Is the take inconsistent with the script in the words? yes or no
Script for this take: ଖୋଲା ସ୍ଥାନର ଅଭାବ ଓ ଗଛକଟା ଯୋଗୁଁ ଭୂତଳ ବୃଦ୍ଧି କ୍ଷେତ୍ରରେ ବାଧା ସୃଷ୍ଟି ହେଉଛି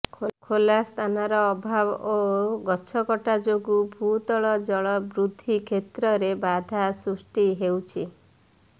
yes